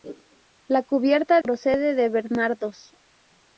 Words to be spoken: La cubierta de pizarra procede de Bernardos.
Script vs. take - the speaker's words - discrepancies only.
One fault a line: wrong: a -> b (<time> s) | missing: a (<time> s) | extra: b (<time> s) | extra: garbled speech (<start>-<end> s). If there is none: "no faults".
missing: de pizarra (1.4 s)